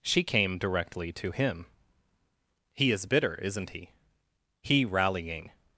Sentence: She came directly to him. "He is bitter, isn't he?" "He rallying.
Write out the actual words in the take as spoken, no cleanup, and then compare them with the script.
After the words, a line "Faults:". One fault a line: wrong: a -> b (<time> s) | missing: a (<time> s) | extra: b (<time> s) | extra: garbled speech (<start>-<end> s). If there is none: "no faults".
She came directly to him. "He is bitter, isn't he?" "He rallying.
Faults:
no faults